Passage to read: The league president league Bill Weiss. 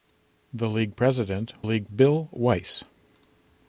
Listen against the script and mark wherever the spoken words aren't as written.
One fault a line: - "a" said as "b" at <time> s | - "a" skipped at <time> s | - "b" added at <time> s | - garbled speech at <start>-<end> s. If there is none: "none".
none